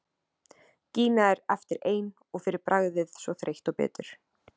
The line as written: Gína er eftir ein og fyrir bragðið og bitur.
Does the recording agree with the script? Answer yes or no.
no